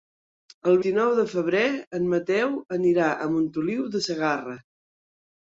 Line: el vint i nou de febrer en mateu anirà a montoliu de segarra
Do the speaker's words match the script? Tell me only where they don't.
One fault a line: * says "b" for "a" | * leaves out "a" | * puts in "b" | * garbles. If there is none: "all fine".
* leaves out "vint"